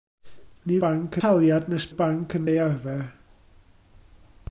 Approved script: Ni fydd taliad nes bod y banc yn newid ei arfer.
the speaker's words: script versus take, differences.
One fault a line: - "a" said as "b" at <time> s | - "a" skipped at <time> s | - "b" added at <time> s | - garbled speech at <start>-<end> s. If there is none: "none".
- "fydd" said as "banc" at 0.8 s
- "bod" skipped at 1.9 s
- "newid" skipped at 2.5 s